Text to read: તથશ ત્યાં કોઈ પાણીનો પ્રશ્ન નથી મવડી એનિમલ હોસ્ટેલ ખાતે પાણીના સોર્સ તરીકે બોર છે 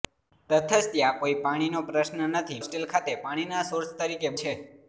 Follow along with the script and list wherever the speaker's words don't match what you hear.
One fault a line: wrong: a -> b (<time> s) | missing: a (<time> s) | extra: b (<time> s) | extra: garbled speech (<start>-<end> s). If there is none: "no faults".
missing: મવડી એનિમલ (2.6 s)
missing: બોર (4.3 s)